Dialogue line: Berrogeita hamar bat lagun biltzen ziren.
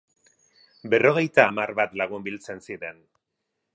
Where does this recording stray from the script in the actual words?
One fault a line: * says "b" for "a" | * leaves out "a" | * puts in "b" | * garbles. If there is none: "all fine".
all fine